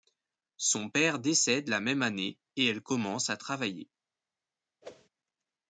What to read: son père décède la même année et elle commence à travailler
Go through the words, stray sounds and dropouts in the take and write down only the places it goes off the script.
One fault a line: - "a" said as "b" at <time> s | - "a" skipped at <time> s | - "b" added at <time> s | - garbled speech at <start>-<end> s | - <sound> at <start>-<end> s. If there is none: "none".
- whoosh at 4.8-5.1 s